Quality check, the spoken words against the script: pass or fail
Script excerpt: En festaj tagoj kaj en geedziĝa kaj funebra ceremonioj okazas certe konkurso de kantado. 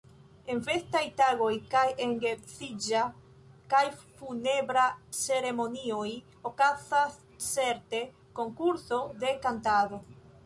pass